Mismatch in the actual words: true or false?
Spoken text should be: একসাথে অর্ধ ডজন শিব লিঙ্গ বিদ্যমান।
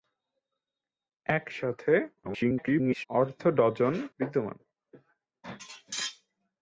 true